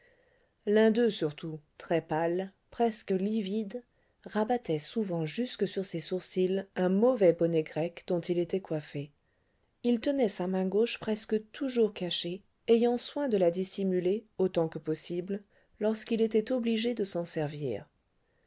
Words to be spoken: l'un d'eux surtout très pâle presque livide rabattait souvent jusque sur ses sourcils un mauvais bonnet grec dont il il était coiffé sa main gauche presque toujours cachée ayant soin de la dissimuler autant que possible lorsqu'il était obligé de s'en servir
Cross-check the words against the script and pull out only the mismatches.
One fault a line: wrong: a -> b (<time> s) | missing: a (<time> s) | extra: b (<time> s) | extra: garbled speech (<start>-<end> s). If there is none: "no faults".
missing: il (8.4 s)
extra: il tenait (9.8 s)